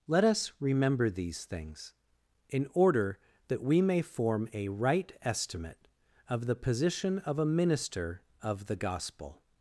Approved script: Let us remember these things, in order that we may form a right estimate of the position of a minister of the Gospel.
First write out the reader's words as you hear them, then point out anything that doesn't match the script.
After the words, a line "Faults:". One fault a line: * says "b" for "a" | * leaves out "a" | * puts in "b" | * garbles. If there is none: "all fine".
Let us remember these things, in order that we may form a right estimate of the position of a minister of the Gospel.
Faults:
all fine